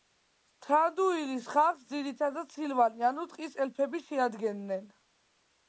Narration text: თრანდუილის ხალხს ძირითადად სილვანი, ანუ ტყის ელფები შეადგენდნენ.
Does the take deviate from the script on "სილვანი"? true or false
false